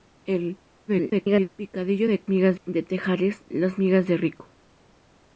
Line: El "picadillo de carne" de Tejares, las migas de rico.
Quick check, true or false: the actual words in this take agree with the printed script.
false